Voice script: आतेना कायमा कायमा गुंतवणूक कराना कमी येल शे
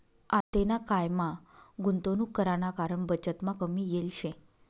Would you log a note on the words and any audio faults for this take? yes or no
yes